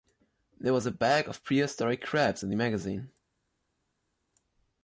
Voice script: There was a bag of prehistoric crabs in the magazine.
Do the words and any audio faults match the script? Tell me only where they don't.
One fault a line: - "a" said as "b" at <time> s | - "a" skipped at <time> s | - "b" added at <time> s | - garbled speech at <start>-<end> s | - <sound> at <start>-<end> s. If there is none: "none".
none